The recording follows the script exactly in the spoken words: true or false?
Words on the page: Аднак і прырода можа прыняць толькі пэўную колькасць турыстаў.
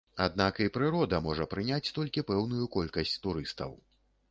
true